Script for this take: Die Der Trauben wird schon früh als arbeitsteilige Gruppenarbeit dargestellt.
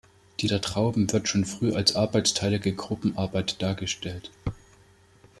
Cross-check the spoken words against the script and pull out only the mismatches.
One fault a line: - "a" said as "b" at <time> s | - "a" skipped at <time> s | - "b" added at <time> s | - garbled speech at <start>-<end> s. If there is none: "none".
none